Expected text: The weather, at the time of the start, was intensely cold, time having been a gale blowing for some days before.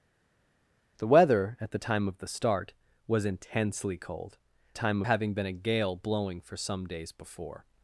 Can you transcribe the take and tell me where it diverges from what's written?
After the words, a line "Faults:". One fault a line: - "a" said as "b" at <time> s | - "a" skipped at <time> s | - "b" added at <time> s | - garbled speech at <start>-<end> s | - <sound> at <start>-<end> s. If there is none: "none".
The weather, at the time of the start, was intensely cold, time having been a gale blowing for some days before.
Faults:
none